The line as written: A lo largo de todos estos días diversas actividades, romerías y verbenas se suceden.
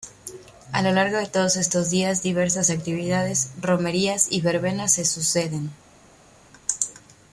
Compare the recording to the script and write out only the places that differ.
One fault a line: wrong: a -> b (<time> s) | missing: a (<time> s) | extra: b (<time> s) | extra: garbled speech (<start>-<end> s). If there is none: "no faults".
no faults